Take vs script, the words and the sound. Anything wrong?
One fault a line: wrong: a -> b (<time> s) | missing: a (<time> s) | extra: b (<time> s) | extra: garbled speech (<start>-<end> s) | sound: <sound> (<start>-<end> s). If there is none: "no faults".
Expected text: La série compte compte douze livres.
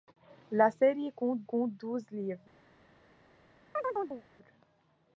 sound: chirp (3.7-4.2 s)